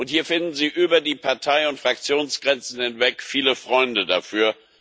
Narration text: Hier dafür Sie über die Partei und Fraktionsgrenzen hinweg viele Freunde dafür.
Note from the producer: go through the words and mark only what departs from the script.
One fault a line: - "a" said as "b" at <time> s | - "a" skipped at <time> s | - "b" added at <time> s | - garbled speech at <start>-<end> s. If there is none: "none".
- "dafür" said as "finden" at 0.2 s